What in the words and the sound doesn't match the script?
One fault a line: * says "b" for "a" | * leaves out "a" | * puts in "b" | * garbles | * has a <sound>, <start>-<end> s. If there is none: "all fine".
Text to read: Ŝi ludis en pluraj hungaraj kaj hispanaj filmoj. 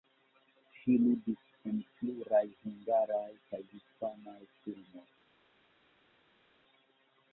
all fine